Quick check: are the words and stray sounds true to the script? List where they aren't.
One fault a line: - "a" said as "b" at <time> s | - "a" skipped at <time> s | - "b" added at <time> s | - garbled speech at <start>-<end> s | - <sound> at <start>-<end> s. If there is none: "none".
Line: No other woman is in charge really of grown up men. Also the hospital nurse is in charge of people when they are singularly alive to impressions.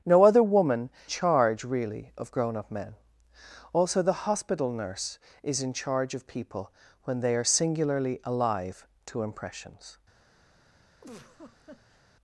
- "is in" skipped at 0.9 s
- laugh at 11.0-12.0 s